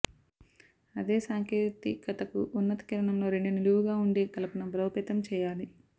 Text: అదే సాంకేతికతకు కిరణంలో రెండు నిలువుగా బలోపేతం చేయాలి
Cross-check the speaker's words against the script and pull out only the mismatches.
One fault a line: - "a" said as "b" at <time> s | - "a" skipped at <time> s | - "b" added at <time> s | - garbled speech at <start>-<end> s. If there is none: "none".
- "ఉన్నత" added at 2.6 s
- "ఉండే కలపను" added at 4.0 s